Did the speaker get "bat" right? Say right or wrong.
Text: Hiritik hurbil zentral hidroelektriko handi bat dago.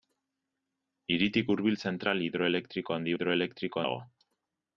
wrong